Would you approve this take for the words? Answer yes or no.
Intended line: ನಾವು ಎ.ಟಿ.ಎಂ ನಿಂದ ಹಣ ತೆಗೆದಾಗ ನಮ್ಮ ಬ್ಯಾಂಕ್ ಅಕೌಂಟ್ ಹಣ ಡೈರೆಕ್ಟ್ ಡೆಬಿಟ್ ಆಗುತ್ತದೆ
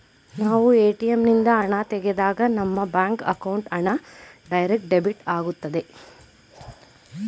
yes